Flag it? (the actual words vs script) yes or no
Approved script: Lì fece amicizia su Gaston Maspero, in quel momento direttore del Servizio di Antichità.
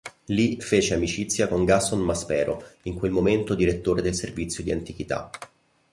yes